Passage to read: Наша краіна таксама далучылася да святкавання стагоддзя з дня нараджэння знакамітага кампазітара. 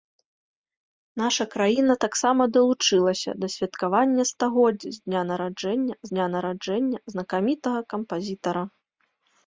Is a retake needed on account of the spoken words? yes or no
yes